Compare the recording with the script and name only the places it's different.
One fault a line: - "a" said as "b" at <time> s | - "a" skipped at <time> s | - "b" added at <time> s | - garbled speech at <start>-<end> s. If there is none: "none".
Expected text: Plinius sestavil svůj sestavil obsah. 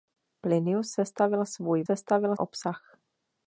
none